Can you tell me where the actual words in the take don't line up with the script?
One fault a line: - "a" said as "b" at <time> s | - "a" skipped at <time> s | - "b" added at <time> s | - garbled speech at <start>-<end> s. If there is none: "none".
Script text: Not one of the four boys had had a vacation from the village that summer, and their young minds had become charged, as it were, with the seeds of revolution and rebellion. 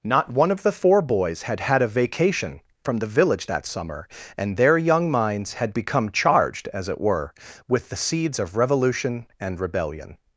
none